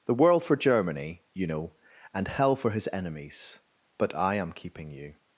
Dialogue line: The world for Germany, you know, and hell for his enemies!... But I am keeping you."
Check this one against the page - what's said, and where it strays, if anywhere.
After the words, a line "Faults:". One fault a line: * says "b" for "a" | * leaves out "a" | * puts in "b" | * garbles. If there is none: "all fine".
The world for Germany, you know, and hell for his enemies!... But I am keeping you."
Faults:
all fine